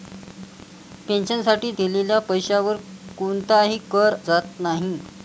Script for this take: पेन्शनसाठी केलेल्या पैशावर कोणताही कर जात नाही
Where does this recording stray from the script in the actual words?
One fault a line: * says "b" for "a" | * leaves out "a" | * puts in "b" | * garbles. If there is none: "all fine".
all fine